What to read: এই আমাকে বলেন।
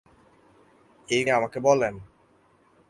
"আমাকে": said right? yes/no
yes